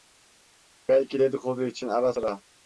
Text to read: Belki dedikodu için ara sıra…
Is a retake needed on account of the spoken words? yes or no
no